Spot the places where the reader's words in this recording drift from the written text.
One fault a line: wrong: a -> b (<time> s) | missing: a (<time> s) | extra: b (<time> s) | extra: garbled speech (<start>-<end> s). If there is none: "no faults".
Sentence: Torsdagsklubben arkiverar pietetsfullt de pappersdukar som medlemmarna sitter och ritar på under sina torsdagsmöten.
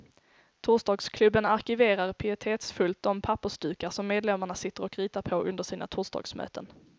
no faults